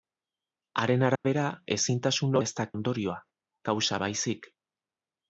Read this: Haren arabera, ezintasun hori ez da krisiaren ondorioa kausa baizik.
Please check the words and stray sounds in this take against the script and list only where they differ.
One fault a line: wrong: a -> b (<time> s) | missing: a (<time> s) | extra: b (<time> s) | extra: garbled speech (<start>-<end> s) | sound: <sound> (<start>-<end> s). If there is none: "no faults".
sound: dropout (1.2-1.2 s)
missing: hori (2.4 s)
missing: krisiaren (2.7 s)